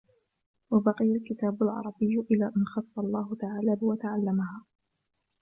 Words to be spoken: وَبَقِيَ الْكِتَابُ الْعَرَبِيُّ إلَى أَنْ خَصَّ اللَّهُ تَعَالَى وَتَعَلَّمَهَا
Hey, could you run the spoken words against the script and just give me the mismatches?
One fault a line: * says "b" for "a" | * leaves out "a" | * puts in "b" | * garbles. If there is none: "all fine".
all fine